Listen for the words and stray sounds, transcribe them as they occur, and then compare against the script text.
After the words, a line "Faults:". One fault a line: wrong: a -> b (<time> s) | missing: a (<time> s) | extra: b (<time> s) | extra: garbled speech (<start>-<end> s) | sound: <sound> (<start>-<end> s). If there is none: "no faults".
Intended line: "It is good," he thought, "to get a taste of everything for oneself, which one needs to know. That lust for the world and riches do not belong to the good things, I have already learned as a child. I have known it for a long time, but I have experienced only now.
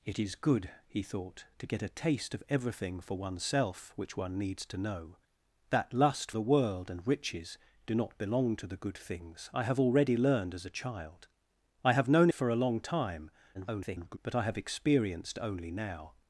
"It is good," he thought, "to get a taste of everything for oneself, which one needs to know. That lust the world and riches do not belong to the good things, I have already learned as a child. I have known for a long time, [garbled] but I have experienced only now.
Faults:
missing: for (6.3 s)
missing: it (12.3 s)
extra: garbled speech (13.5-14.2 s)